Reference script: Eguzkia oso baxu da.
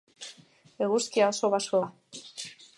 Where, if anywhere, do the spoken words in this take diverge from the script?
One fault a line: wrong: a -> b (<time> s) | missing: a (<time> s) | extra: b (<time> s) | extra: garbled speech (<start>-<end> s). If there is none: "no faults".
no faults